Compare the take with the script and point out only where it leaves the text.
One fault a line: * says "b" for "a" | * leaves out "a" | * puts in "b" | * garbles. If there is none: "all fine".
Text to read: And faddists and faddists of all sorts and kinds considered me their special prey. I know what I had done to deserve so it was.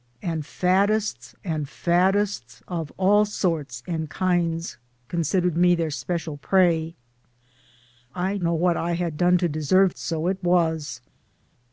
all fine